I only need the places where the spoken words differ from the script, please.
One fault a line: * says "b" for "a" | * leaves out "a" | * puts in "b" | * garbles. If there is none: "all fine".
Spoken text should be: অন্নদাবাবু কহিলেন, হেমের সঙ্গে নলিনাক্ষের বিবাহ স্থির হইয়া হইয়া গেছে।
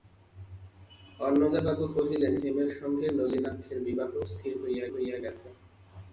all fine